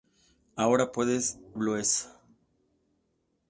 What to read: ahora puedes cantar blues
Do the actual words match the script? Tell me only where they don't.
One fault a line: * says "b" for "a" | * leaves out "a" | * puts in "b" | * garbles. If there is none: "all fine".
* leaves out "cantar"